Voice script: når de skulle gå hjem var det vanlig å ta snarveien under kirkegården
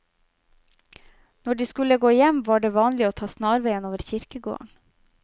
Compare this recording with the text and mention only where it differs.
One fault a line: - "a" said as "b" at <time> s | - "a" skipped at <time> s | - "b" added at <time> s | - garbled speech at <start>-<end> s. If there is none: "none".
- "under" said as "over" at 3.9 s